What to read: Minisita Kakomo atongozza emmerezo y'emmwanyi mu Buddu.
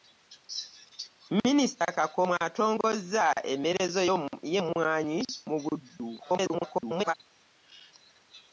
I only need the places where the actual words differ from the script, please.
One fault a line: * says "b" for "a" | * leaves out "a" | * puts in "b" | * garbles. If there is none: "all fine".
* garbles